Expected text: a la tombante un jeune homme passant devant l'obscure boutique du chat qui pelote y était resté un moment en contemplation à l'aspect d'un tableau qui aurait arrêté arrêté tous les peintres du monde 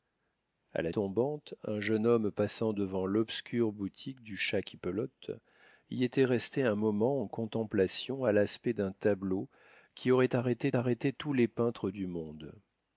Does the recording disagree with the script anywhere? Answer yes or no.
no